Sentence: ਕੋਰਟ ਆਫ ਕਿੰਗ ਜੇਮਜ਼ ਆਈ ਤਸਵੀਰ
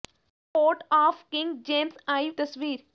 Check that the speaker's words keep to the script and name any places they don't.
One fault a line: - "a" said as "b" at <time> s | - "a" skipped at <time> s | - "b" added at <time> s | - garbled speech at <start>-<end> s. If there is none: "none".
none